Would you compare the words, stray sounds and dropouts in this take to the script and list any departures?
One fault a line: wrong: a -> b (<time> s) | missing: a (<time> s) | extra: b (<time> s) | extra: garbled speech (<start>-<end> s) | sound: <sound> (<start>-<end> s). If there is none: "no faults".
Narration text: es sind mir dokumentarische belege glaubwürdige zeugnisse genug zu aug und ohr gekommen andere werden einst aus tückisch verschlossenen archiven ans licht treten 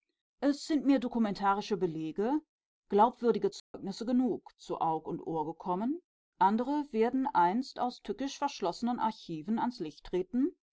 sound: dropout (3.6-3.7 s)